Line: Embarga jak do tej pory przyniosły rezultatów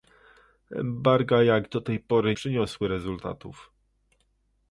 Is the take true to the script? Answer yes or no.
yes